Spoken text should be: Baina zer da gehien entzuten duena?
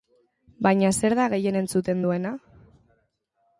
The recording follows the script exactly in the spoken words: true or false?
true